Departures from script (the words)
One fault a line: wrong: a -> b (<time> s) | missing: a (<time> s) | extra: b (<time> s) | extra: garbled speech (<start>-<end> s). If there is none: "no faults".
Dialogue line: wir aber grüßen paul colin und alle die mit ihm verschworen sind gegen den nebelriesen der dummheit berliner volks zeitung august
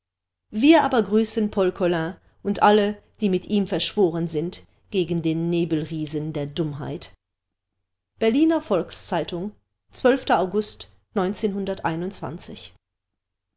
no faults